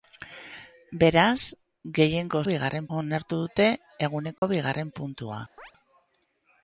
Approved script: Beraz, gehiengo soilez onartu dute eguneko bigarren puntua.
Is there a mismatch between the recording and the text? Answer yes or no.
yes